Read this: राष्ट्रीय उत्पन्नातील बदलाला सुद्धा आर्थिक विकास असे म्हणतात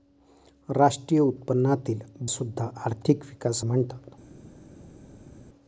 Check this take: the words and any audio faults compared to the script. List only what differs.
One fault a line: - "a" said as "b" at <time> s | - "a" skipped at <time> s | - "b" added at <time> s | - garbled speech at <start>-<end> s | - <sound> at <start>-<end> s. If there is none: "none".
- "बदलाला" skipped at 2.0 s
- "असे" skipped at 3.6 s